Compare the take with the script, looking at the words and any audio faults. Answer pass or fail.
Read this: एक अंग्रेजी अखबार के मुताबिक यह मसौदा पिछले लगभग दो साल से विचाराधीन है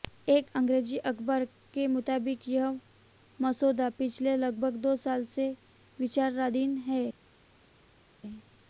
pass